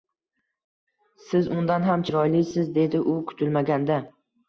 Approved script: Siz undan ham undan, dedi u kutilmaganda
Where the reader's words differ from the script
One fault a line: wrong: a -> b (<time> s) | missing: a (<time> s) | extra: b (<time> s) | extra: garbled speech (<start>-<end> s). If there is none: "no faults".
wrong: undan -> chiroylisiz (2.1 s)